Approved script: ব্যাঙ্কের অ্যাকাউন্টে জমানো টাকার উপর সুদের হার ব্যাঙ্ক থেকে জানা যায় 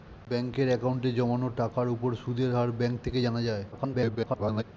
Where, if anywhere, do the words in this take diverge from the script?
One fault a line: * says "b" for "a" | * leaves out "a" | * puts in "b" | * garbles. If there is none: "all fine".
* garbles